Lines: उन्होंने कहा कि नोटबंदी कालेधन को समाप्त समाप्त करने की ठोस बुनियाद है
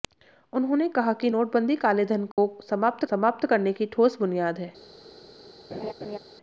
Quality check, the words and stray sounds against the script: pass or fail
fail